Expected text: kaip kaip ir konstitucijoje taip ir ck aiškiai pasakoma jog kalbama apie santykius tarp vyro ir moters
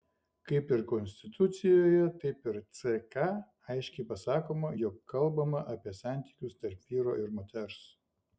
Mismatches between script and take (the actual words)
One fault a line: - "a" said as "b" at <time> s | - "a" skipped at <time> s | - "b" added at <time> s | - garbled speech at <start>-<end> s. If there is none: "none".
- "kaip" skipped at 0.7 s